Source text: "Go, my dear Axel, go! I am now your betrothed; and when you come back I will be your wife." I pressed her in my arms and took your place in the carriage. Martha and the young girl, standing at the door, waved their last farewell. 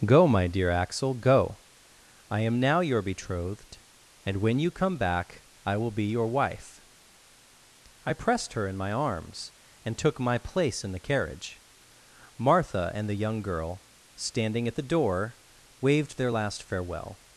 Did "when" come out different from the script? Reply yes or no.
no